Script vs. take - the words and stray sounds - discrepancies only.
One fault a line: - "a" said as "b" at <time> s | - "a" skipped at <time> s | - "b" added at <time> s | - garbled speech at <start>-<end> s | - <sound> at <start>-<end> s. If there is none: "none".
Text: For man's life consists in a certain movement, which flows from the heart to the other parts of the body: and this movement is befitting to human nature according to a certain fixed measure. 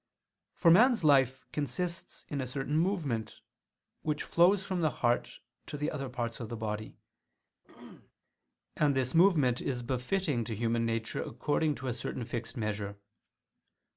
- throat clearing at 7.6-8.1 s